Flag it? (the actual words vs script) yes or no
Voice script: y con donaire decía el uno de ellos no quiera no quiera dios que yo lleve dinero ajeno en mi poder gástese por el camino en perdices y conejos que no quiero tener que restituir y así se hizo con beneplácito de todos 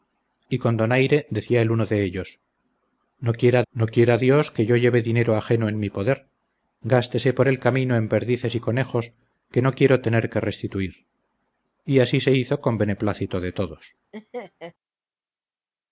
no